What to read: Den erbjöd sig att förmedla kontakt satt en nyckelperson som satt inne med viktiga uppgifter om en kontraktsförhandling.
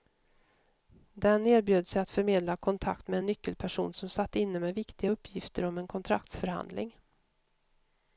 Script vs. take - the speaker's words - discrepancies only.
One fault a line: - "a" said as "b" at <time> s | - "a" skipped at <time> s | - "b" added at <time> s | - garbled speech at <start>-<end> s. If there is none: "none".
- "satt" said as "med" at 3.1 s